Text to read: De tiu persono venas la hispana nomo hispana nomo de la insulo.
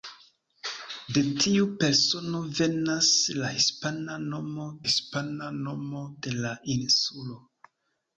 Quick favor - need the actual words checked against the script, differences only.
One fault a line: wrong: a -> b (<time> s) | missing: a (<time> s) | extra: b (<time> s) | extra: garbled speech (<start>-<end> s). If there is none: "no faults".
no faults